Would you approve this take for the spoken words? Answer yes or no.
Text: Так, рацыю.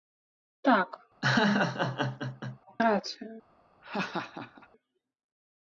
yes